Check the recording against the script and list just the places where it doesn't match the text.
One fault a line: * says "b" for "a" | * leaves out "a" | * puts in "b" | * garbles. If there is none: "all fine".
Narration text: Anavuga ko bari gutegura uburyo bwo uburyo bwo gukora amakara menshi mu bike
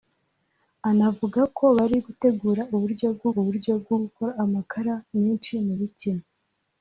all fine